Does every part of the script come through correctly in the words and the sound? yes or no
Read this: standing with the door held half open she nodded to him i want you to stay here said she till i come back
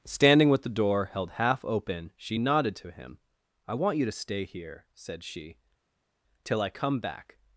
yes